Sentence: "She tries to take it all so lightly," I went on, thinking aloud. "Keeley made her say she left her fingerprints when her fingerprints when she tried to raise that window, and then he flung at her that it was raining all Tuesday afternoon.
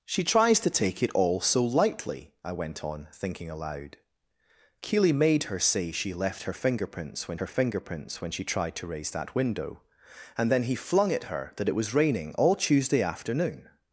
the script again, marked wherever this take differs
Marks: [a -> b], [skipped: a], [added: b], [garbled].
"She tries to take it all so lightly," I went on, thinking aloud. "Keeley made her say she left her fingerprints when her fingerprints when she tried to raise that window, and then he flung at her that it was raining all Tuesday afternoon.